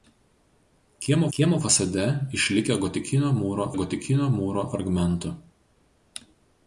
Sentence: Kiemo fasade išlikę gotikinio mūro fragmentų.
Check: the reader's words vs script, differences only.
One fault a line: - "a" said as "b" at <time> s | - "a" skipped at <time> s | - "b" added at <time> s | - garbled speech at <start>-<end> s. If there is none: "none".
- "kiemo" added at 1.4 s
- "gotikinio mūro" added at 3.8 s